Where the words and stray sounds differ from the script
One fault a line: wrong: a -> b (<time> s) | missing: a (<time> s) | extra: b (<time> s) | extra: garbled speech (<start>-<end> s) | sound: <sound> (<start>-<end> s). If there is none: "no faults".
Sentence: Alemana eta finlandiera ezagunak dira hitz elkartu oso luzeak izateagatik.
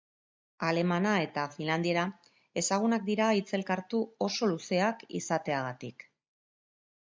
no faults